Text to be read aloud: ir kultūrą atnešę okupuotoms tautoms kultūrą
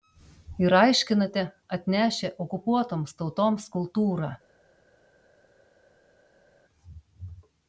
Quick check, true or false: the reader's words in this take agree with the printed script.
false